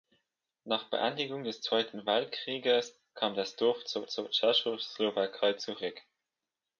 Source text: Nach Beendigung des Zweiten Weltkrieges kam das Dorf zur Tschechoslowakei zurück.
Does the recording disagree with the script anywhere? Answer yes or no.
yes